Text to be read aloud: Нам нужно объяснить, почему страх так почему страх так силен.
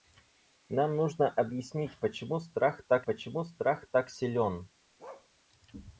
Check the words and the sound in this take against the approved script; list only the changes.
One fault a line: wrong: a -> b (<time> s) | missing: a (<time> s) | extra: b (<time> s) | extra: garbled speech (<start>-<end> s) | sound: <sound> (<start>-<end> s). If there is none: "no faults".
sound: bark (5.0-5.3 s)